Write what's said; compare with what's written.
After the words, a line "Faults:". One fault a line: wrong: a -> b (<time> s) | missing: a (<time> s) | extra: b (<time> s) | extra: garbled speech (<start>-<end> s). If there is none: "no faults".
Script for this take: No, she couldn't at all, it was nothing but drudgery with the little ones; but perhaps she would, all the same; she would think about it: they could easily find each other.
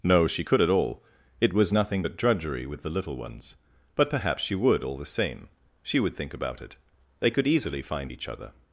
No, she could at all, it was nothing but drudgery with the little ones; but perhaps she would, all the same; she would think about it: they could easily find each other.
Faults:
wrong: couldn't -> could (0.4 s)